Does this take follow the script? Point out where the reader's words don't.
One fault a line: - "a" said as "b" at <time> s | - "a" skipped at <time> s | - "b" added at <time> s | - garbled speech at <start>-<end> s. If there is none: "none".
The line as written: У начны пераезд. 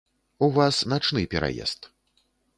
- "вас" added at 0.5 s